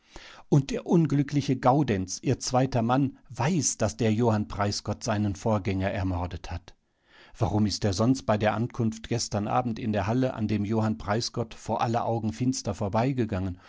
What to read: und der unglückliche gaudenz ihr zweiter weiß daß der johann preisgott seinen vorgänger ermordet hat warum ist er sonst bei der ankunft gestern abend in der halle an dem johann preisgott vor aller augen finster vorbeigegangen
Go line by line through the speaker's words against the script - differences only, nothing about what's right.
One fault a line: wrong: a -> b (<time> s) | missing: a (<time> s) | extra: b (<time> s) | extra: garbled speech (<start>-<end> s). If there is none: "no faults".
extra: mann (2.8 s)